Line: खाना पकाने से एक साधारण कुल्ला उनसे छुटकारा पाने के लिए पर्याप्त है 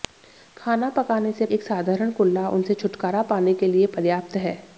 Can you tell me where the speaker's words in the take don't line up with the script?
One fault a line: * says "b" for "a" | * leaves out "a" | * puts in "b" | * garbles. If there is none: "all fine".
all fine